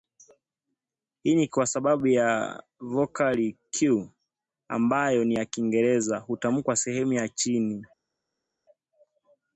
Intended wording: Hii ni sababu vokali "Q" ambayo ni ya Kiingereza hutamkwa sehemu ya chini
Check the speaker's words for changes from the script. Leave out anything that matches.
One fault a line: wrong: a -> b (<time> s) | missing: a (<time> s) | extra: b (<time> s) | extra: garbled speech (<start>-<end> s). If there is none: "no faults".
extra: kwa (1.5 s)